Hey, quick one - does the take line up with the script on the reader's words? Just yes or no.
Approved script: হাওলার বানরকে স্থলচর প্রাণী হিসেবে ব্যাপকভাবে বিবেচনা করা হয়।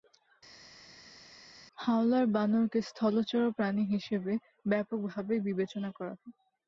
yes